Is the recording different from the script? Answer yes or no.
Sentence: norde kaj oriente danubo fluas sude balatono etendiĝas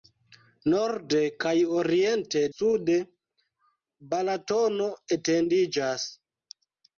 yes